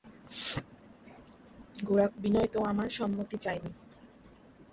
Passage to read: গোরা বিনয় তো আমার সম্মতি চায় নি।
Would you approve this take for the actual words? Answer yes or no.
yes